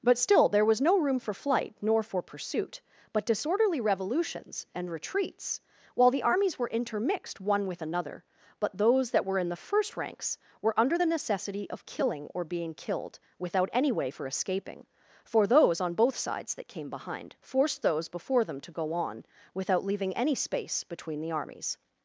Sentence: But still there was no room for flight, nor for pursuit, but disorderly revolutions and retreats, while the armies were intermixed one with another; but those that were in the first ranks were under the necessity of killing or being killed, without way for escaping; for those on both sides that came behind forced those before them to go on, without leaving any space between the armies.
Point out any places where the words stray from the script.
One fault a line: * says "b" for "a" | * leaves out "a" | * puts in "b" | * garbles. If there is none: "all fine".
* puts in "any"